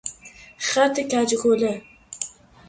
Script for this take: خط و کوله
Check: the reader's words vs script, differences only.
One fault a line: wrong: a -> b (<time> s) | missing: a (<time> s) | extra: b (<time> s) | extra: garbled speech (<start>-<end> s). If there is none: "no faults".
extra: کج (1.0 s)